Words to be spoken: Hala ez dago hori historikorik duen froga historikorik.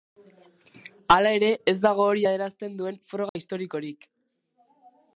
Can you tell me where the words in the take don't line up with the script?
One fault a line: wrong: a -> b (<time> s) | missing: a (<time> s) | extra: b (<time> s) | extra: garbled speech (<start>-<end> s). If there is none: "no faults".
extra: ere (1.4 s)
wrong: historikorik -> adierazten (2.3 s)